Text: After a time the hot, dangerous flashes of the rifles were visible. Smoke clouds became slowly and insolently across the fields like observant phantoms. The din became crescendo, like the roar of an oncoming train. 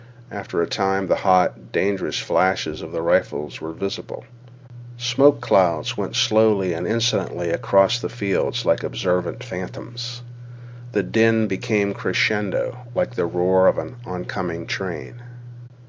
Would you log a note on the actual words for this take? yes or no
yes